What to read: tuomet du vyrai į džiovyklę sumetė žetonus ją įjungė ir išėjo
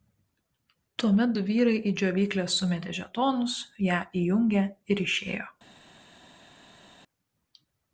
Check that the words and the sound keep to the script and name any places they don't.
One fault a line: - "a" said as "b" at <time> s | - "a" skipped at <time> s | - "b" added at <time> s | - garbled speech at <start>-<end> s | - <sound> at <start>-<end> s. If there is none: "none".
none